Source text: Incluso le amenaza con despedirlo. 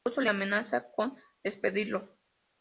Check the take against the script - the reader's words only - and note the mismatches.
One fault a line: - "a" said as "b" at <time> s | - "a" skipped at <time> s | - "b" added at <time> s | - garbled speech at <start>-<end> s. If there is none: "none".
none